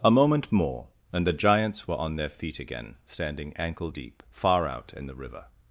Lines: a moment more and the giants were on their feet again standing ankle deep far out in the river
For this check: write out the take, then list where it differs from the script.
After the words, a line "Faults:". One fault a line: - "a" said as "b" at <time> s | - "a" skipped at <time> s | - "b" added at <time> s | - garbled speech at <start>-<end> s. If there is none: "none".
a moment more and the giants were on their feet again standing ankle deep far out in the river
Faults:
none